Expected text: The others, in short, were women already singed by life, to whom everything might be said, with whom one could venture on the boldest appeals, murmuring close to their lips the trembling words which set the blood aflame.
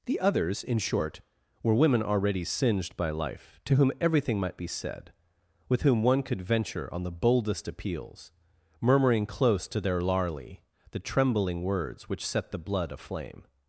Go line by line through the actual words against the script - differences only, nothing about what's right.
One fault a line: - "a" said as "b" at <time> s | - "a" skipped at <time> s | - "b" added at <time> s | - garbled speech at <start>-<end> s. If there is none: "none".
- "lips" said as "larly" at 10.0 s